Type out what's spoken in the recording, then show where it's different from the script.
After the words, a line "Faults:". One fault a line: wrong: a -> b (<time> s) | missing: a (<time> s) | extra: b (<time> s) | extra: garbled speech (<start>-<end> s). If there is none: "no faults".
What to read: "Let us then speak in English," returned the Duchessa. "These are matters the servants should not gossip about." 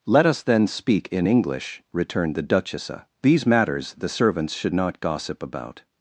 "Let us then speak in English," returned the Duchessa. "These matters the servants should not gossip about."
Faults:
missing: are (3.4 s)